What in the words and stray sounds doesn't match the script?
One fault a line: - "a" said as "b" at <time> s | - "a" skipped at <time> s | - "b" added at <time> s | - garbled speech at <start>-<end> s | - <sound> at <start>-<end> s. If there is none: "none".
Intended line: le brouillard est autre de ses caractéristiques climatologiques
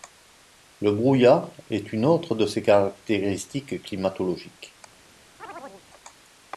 - "une" added at 1.9 s
- chirp at 5.4-5.8 s